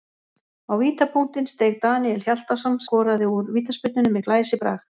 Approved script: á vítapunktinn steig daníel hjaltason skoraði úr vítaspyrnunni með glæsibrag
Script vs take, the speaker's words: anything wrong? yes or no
no